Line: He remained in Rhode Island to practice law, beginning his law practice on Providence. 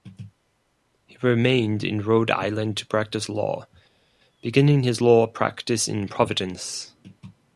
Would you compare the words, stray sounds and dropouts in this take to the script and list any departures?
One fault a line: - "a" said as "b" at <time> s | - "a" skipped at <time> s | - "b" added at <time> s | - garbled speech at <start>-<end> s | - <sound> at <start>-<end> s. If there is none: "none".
- "on" said as "in" at 5.9 s